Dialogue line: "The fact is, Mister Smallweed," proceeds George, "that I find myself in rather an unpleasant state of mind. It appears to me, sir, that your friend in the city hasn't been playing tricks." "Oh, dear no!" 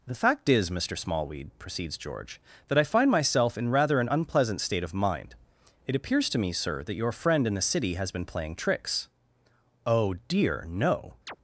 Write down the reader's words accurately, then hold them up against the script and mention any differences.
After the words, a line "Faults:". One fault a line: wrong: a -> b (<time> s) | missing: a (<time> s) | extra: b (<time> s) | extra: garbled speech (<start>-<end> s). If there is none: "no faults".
"The fact is, Mister Smallweed," proceeds George, "that I find myself in rather an unpleasant state of mind. It appears to me, sir, that your friend in the city has been playing tricks." "Oh, dear no!"
Faults:
wrong: hasn't -> has (7.9 s)